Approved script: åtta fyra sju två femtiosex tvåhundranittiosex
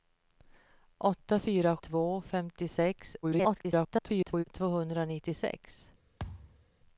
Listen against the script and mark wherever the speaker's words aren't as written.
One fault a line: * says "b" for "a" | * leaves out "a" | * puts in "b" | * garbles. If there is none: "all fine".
* leaves out "sju"
* garbles